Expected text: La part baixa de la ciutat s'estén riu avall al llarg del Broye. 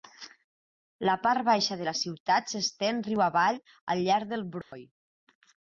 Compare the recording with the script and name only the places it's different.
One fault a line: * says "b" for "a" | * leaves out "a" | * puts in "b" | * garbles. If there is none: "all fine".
all fine